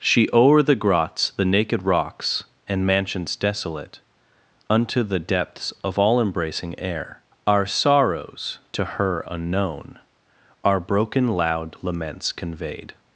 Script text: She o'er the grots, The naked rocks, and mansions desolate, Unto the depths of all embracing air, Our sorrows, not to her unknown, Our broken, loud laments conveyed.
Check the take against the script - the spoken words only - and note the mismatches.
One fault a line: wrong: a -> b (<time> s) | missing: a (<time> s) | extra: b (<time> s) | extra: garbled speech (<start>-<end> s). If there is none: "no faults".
missing: not (8.6 s)